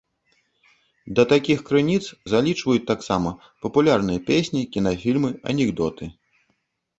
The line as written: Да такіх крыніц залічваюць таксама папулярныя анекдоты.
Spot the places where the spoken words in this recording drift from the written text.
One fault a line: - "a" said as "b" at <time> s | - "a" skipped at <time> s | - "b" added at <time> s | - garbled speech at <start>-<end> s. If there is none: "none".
- "песні кінафільмы" added at 4.3 s